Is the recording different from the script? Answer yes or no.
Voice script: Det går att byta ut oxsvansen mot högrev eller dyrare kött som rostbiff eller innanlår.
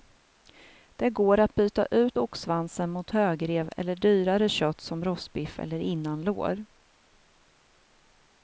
no